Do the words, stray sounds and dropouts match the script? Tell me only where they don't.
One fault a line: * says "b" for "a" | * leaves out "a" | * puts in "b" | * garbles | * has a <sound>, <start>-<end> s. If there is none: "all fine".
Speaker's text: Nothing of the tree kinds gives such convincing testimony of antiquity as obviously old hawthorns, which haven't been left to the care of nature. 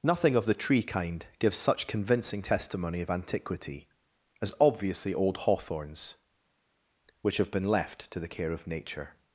* says "kind" for "kinds"
* says "have" for "haven't"